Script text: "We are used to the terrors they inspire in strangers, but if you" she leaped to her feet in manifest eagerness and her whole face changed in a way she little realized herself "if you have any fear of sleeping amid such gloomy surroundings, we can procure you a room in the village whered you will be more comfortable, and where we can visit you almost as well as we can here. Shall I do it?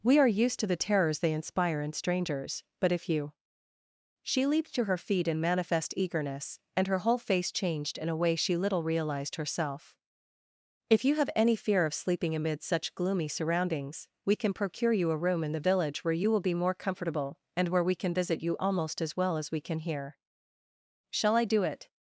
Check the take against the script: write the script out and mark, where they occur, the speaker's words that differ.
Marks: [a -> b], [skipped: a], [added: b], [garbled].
"We are used to the terrors they inspire in strangers, but if you" she leaped to her feet in manifest eagerness and her whole face changed in a way she little realized herself "if you have any fear of sleeping amid such gloomy surroundings, we can procure you a room in the village [whered -> where] you will be more comfortable, and where we can visit you almost as well as we can here. Shall I do it?